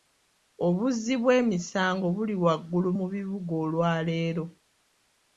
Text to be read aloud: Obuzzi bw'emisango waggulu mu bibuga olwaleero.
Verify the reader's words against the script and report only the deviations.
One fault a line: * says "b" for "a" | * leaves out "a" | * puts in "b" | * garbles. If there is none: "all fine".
* puts in "buli"